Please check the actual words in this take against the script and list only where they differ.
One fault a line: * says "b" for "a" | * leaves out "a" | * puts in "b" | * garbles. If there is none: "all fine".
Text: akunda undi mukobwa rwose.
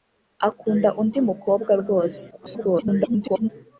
* garbles